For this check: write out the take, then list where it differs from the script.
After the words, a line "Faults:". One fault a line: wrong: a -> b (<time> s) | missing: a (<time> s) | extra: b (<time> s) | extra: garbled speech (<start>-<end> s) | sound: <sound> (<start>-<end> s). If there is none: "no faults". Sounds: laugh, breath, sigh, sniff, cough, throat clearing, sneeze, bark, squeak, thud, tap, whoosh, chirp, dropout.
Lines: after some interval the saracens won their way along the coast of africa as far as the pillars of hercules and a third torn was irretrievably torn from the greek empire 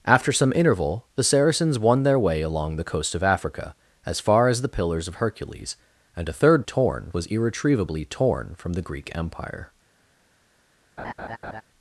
after some interval the saracens won their way along the coast of africa as far as the pillars of hercules and a third torn was irretrievably torn from the greek empire
Faults:
sound: laugh (11.0-11.6 s)